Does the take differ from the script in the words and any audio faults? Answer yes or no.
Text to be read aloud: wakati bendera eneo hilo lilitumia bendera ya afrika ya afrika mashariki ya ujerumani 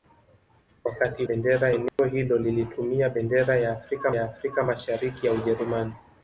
yes